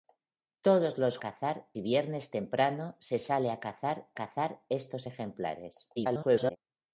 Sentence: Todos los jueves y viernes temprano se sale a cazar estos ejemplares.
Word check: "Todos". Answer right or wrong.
right